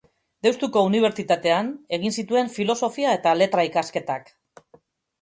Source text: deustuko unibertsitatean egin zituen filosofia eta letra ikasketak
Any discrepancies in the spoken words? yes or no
no